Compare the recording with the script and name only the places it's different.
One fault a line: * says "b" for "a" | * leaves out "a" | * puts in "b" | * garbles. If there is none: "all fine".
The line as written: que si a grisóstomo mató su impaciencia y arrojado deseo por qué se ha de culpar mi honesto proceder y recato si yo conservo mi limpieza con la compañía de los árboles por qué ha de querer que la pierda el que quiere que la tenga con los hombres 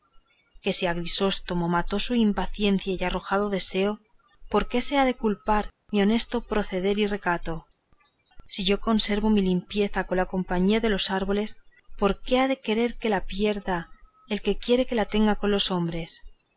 all fine